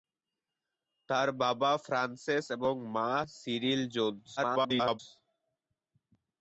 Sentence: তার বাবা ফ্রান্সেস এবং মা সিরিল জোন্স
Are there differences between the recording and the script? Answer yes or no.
yes